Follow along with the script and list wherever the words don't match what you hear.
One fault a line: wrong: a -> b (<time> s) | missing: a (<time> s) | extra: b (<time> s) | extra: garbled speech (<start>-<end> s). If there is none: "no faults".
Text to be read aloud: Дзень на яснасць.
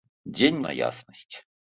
no faults